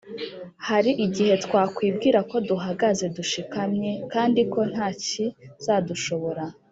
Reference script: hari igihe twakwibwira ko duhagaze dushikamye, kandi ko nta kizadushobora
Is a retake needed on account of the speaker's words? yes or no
no